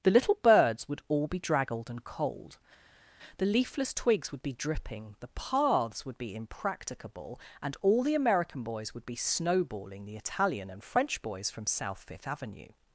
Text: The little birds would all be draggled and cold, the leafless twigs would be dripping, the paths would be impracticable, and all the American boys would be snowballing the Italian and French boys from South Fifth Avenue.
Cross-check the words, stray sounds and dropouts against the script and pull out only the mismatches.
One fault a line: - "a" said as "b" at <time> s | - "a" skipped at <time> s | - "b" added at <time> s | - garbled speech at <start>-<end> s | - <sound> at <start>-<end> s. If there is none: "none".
none